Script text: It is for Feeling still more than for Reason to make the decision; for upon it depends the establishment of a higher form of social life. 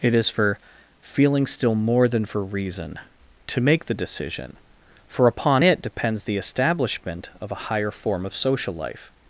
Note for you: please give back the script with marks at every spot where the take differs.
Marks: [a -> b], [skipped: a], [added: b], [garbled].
It is for Feeling still more than for Reason to make the decision; for upon it depends the establishment of a higher form of social life.